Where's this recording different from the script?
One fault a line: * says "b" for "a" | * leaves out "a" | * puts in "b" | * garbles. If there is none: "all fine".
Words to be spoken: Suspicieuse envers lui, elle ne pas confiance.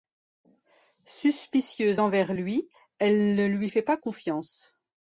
* puts in "lui fait"